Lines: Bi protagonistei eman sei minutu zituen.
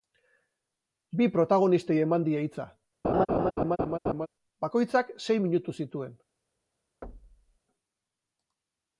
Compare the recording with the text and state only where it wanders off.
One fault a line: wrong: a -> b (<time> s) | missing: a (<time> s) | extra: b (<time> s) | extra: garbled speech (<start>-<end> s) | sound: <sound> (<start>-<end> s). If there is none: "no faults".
extra: die hitza Bakoitzak (2.3 s)
sound: laugh (3.0-4.3 s)
sound: thud (7.0-7.6 s)